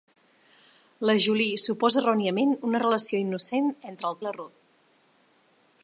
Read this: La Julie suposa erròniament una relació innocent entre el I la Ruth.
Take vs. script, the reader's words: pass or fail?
pass